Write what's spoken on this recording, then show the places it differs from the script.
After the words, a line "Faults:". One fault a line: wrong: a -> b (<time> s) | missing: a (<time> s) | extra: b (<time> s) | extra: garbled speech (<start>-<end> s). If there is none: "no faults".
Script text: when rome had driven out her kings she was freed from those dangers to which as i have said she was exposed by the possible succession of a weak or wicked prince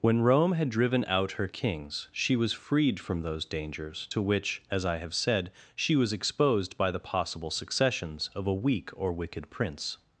when rome had driven out her kings she was freed from those dangers to which as i have said she was exposed by the possible successions of a weak or wicked prince
Faults:
wrong: succession -> successions (7.5 s)